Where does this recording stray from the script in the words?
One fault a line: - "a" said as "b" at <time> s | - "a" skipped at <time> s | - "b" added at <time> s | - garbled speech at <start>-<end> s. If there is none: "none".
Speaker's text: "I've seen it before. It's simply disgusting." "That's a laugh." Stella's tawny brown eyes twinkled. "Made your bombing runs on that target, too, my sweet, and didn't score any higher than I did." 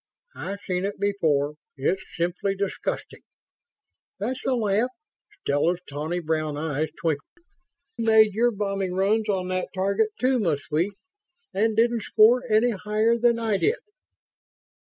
none